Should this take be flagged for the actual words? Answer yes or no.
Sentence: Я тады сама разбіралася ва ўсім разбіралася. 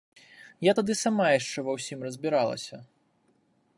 yes